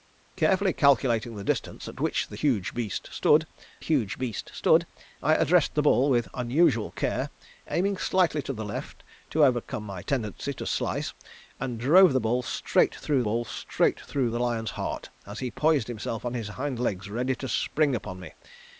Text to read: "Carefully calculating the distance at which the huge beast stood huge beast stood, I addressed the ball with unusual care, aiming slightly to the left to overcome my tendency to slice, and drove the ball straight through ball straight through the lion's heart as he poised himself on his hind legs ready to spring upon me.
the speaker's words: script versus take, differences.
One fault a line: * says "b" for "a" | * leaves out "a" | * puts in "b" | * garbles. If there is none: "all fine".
all fine